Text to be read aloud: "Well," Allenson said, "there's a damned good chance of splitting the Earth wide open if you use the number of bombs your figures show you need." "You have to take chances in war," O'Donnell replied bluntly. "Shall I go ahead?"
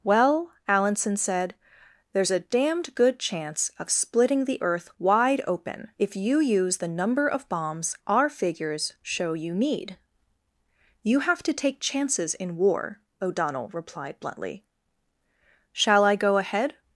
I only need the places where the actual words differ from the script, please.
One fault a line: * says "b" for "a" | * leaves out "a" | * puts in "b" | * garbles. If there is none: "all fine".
* says "our" for "your"